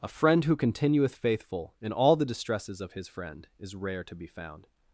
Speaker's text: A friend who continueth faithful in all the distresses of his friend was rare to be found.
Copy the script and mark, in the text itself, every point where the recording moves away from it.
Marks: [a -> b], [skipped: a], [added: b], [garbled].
A friend who continueth faithful in all the distresses of his friend [was -> is] rare to be found.